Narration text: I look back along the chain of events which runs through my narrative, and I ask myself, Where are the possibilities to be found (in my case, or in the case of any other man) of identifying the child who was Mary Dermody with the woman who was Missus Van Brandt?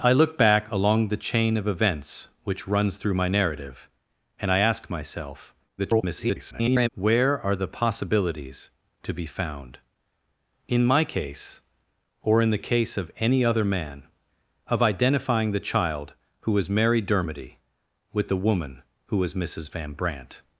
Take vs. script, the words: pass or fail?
fail